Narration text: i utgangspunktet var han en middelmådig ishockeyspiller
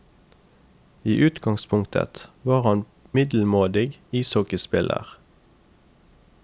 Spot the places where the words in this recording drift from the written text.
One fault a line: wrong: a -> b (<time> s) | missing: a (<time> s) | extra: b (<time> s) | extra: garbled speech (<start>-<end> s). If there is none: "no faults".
missing: en (2.9 s)